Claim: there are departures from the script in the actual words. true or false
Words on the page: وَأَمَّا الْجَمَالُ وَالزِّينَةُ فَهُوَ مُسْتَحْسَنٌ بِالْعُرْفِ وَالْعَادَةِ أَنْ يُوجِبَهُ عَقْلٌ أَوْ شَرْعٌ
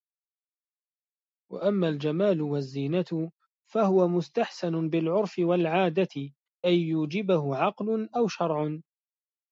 false